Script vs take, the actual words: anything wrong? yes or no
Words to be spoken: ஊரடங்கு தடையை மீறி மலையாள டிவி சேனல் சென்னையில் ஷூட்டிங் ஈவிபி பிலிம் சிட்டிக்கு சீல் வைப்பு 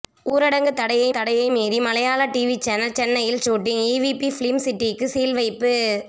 yes